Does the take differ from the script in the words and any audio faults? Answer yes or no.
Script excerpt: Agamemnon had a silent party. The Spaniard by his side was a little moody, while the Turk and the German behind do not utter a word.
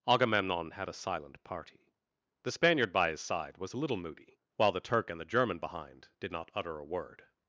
yes